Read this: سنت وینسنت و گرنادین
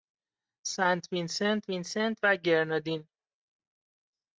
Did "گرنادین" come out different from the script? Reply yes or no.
no